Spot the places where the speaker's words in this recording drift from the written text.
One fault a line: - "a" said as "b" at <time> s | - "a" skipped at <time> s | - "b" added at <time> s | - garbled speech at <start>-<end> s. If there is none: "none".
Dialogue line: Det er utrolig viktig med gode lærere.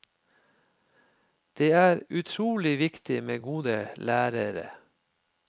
none